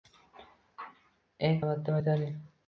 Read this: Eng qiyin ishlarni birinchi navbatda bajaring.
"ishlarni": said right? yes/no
no